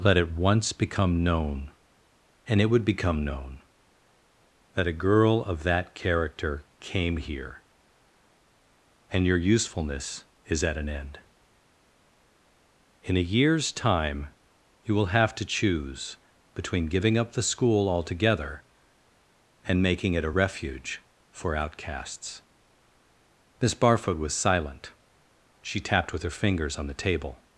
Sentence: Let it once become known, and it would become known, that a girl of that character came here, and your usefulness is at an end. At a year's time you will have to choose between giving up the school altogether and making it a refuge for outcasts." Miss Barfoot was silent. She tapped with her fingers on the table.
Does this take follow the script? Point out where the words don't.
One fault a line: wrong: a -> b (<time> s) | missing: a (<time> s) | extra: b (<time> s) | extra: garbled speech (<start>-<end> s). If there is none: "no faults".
wrong: At -> In (13.0 s)